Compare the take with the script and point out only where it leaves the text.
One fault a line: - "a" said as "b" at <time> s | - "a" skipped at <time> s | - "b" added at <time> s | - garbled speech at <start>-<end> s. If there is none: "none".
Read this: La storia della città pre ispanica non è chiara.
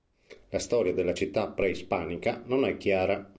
none